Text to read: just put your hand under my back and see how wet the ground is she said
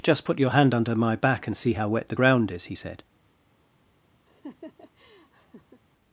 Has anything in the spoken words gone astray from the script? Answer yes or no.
yes